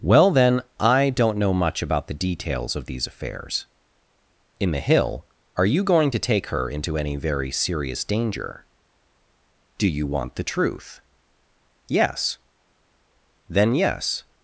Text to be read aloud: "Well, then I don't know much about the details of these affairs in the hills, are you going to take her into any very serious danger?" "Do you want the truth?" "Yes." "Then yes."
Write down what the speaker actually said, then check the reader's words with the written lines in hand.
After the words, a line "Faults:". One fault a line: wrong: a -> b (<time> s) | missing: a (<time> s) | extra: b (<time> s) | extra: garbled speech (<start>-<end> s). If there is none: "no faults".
"Well, then I don't know much about the details of these affairs in the hill, are you going to take her into any very serious danger?" "Do you want the truth?" "Yes." "Then yes."
Faults:
wrong: hills -> hill (4.8 s)